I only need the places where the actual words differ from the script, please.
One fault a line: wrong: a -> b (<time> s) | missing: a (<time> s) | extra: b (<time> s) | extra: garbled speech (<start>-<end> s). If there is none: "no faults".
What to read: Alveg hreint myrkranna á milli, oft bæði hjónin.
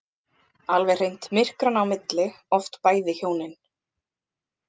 no faults